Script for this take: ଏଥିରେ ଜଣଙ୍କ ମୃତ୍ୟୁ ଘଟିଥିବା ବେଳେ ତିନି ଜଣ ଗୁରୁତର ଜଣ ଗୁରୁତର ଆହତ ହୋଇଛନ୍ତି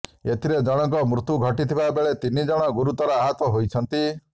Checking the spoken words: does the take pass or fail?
fail